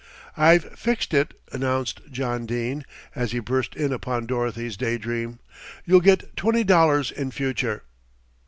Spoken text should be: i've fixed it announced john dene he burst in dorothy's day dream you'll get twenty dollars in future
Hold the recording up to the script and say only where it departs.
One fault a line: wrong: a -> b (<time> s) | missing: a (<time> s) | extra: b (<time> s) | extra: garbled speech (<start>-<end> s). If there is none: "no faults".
extra: as (3.1 s)
extra: upon (3.9 s)